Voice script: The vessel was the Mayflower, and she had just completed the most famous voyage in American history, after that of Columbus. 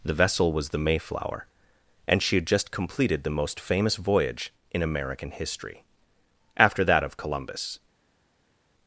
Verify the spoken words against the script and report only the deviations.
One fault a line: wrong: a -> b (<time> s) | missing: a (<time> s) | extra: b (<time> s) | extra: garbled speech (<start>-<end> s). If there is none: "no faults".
no faults